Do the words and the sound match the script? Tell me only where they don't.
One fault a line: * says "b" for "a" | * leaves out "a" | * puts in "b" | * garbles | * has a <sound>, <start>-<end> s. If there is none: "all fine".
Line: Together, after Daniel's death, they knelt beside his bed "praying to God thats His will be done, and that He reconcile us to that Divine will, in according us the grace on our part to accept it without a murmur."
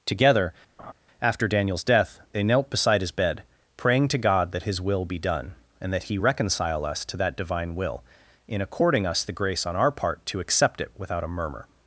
* has a laugh, 0.8-0.9 s
* says "that" for "thats"